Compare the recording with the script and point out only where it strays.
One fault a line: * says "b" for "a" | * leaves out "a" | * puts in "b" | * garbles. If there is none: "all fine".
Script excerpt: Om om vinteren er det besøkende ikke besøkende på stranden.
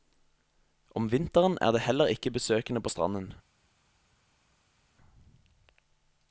* leaves out "om"
* says "heller" for "besøkende"